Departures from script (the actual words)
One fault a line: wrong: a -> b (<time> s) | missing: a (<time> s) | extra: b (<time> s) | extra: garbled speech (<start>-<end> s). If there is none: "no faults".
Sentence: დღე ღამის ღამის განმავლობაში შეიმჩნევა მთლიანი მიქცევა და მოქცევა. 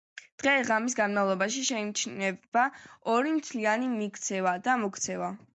missing: ღამის (0.9 s)
extra: ორი (3.2 s)